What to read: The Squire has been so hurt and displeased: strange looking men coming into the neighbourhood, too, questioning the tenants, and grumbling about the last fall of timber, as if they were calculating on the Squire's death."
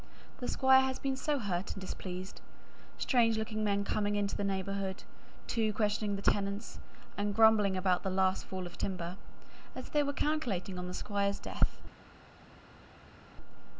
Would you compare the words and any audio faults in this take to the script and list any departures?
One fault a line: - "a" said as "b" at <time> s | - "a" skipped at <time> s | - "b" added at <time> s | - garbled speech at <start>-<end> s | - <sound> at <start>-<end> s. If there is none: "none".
- "if" skipped at 9.9 s